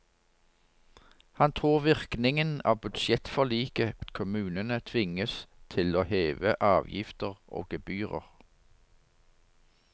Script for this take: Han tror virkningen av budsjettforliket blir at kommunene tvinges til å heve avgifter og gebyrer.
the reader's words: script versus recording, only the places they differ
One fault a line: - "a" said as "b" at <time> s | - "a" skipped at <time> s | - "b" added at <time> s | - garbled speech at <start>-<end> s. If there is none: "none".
- "blir" skipped at 4.0 s